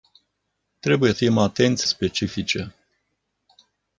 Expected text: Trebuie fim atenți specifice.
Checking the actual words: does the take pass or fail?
pass